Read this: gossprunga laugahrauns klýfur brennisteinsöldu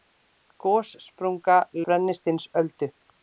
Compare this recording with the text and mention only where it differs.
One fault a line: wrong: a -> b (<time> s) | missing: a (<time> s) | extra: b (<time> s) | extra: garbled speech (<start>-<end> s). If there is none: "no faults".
missing: laugahrauns klýfur (1.6 s)